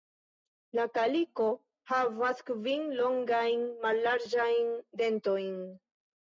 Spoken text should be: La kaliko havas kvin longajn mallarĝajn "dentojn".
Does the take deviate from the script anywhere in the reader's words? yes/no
no